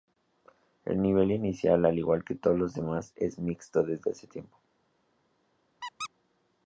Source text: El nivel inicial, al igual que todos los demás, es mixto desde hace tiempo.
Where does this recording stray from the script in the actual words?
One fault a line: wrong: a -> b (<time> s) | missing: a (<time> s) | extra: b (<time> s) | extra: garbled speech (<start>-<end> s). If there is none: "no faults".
no faults